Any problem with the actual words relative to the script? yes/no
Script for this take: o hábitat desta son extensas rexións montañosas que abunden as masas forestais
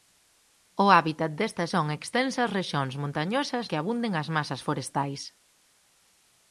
no